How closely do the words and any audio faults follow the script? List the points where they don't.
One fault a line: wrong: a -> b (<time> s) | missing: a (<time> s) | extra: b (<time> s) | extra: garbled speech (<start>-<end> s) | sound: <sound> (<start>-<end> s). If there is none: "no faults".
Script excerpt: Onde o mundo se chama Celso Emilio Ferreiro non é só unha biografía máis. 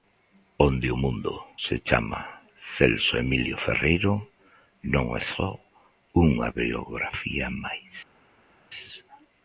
no faults